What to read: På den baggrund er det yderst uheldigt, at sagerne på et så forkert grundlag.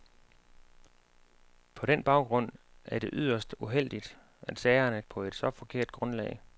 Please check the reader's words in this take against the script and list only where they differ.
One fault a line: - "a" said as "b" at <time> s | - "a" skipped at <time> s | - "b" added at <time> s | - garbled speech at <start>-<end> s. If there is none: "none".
none